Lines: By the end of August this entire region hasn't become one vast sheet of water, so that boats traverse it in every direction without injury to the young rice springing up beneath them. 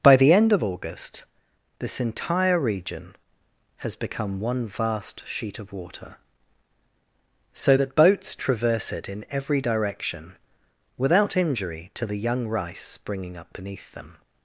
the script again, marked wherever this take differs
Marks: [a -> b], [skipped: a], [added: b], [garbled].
By the end of August this entire region [hasn't -> has] become one vast sheet of water, so that boats traverse it in every direction without injury to the young rice springing up beneath them.